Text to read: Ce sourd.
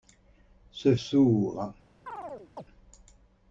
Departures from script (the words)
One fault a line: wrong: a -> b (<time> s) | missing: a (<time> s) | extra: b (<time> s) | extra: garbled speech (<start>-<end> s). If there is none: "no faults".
no faults